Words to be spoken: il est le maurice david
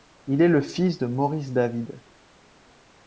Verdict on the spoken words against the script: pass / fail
fail